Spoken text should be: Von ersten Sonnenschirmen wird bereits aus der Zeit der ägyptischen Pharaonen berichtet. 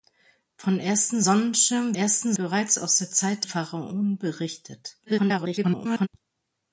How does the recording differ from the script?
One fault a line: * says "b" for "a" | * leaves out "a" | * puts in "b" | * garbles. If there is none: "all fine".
* says "ersten" for "wird"
* leaves out "der ägyptischen"
* garbles